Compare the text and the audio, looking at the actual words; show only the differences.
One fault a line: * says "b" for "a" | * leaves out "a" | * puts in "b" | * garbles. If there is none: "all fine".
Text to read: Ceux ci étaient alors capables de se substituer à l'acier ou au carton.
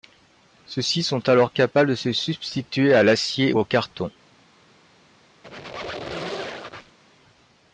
* says "sont" for "étaient"